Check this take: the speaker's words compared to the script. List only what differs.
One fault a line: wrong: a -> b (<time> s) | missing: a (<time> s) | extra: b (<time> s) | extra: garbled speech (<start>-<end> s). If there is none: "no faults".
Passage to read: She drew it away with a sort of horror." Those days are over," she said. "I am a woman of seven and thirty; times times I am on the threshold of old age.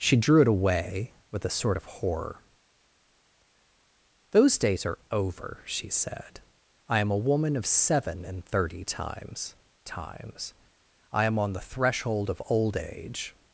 no faults